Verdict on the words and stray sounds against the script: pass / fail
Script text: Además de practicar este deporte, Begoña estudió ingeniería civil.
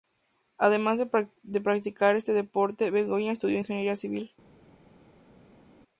pass